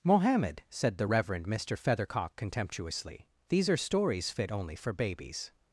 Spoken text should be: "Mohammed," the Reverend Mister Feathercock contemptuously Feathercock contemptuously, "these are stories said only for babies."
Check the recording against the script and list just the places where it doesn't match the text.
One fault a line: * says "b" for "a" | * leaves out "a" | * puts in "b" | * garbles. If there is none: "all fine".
* puts in "said"
* leaves out "Feathercock contemptuously"
* says "fit" for "said"